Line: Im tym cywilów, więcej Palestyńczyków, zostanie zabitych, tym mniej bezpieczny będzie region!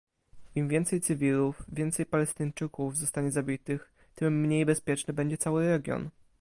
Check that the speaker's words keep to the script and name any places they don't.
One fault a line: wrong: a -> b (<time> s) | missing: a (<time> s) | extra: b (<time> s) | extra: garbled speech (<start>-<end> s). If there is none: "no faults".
wrong: tym -> więcej (0.7 s)
extra: cały (5.4 s)